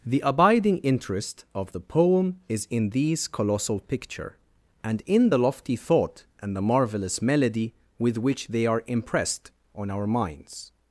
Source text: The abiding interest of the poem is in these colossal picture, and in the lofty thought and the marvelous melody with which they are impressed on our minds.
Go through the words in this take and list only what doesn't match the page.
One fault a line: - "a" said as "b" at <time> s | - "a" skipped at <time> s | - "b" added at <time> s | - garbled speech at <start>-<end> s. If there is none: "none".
none